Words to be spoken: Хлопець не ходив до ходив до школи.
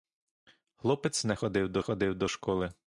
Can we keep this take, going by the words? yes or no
yes